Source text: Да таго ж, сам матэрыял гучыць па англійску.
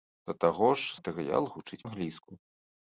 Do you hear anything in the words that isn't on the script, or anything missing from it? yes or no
yes